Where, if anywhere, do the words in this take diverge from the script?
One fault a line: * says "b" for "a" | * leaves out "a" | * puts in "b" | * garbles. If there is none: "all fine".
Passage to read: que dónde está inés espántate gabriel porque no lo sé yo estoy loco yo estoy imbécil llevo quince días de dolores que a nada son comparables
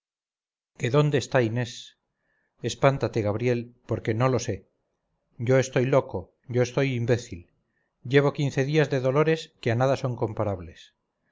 all fine